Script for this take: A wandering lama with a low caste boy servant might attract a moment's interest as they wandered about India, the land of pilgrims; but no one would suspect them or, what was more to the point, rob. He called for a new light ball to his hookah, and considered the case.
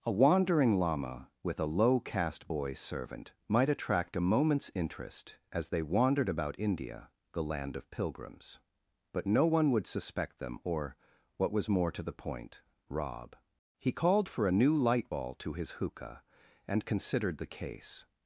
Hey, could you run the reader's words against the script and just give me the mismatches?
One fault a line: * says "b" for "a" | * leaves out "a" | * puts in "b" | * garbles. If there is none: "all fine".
all fine